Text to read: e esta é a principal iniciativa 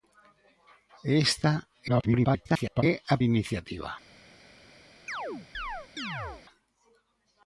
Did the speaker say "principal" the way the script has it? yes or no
no